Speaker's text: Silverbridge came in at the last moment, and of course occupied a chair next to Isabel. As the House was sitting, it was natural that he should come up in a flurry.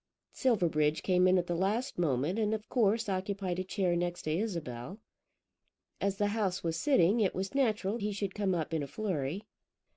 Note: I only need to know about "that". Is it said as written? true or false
false